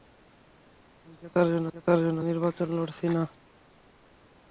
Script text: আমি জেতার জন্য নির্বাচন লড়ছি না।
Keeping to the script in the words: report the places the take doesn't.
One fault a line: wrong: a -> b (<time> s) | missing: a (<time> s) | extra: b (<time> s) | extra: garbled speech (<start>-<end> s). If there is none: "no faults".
extra: জেতার জন্য (1.7 s)